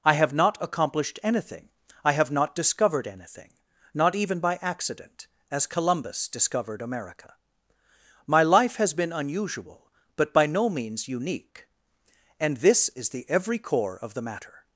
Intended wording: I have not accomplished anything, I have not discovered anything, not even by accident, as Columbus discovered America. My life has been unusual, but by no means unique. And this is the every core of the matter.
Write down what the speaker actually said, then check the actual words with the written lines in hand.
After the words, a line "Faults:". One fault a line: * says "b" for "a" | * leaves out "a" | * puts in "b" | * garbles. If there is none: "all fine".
I have not accomplished anything, I have not discovered anything, not even by accident, as Columbus discovered America. My life has been unusual, but by no means unique. And this is the every core of the matter.
Faults:
all fine